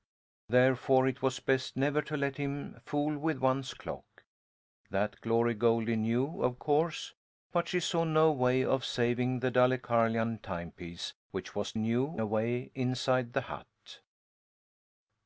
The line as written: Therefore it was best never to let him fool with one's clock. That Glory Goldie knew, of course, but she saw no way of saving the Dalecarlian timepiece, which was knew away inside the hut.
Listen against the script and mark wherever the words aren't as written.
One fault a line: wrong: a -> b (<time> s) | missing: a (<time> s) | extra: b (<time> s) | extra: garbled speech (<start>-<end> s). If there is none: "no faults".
no faults